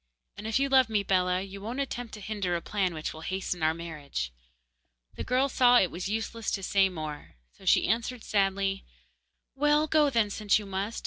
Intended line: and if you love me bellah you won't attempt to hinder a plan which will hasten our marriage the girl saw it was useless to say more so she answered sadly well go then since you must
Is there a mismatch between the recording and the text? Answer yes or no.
no